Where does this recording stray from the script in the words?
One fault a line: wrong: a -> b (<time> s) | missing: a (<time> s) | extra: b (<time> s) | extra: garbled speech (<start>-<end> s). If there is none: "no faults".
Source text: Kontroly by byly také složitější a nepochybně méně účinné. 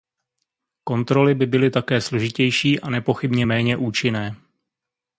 no faults